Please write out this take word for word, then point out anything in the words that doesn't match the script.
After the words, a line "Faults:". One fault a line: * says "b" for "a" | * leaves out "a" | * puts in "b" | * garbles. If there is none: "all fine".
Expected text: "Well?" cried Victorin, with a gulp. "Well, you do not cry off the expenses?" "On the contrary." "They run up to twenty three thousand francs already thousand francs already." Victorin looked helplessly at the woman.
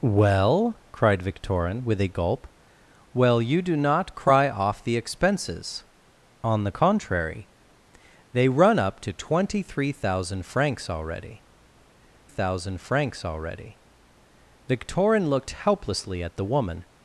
"Well?" cried Victorin, with a gulp. "Well, you do not cry off the expenses?" "On the contrary." "They run up to twenty three thousand francs already thousand francs already." Victorin looked helplessly at the woman.
Faults:
all fine